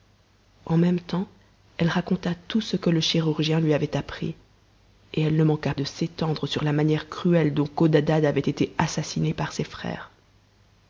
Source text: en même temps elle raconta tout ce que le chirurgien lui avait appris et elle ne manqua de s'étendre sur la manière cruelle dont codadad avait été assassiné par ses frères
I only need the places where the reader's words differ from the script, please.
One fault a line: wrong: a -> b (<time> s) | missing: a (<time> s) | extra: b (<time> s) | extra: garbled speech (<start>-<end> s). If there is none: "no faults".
no faults